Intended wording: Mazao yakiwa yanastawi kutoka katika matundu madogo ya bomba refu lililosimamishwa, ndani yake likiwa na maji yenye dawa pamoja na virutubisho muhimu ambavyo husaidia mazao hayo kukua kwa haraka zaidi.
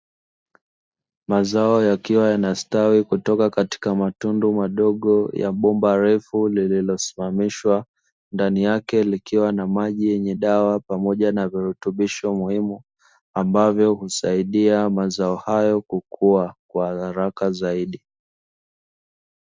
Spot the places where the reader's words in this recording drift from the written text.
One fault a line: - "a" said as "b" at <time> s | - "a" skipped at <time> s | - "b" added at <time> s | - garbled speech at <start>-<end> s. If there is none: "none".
none